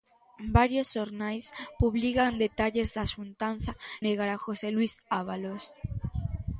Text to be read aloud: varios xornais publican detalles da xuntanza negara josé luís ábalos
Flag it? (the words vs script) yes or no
no